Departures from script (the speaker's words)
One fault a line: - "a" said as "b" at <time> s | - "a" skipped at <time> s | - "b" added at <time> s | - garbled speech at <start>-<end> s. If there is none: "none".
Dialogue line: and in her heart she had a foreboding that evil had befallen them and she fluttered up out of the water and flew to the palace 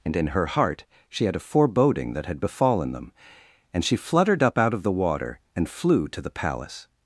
- "evil" skipped at 2.2 s